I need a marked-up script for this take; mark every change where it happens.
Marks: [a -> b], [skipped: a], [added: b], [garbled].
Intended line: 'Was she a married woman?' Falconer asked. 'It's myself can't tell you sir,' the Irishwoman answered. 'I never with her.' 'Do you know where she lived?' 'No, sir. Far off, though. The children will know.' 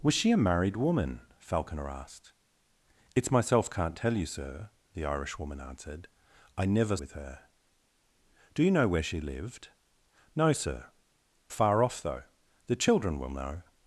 'Was she a married woman?' Falconer asked. 'It's myself can't tell you sir,' the Irishwoman answered. 'I never with her.' 'Do you know where she lived?' 'No, sir. Far off, though. The children will know.'